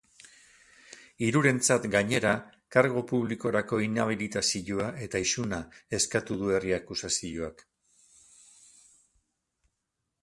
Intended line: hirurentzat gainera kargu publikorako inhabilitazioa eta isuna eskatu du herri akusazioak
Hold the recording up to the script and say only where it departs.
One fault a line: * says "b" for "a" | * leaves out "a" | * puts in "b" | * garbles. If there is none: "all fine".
all fine